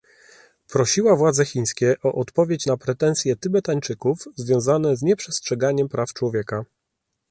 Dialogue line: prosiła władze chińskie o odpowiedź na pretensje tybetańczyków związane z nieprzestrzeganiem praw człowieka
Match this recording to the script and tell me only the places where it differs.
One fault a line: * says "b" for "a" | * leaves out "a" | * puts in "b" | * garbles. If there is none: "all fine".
all fine